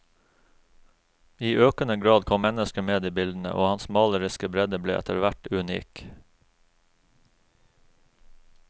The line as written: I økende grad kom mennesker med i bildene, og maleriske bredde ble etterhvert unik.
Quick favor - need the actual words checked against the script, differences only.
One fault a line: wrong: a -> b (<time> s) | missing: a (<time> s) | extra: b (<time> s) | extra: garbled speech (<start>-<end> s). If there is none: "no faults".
extra: hans (3.7 s)